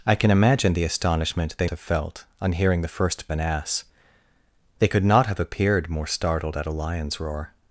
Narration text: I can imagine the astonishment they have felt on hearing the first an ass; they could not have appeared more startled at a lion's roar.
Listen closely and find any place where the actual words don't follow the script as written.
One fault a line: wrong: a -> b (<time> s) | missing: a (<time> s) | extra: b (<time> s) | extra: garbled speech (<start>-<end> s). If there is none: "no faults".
no faults